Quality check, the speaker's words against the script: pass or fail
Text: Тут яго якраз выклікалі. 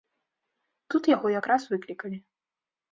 pass